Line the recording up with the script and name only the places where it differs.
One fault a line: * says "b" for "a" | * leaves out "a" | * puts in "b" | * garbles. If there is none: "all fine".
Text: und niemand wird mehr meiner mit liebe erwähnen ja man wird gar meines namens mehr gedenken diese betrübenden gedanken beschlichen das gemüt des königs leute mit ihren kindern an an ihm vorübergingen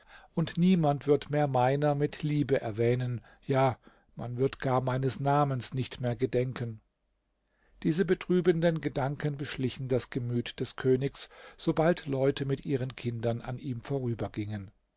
* puts in "nicht"
* puts in "sobald"
* leaves out "an"